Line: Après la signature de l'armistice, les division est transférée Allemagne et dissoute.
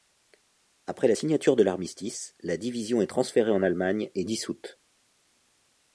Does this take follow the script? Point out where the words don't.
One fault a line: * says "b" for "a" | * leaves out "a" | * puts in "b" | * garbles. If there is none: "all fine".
* says "la" for "les"
* puts in "en"